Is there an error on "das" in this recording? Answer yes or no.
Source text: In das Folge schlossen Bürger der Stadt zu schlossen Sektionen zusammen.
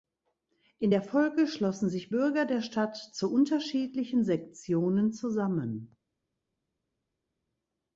yes